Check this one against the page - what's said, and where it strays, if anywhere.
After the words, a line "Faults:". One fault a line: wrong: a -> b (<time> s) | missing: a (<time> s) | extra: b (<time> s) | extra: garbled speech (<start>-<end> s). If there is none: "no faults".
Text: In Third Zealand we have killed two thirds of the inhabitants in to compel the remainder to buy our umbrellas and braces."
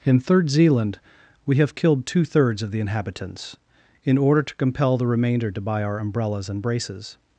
In Third Zealand we have killed two thirds of the inhabitants in order to compel the remainder to buy our umbrellas and braces."
Faults:
extra: order (4.2 s)